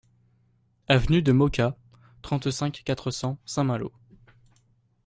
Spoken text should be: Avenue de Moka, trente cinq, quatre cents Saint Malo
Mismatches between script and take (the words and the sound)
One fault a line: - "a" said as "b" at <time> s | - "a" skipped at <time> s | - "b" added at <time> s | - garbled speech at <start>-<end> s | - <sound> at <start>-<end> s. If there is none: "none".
none